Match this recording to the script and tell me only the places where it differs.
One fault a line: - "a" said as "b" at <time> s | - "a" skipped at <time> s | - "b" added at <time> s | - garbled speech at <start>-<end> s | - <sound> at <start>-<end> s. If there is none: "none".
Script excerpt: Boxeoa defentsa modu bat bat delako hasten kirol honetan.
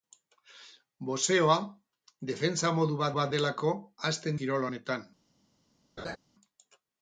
- laugh at 6.0-6.2 s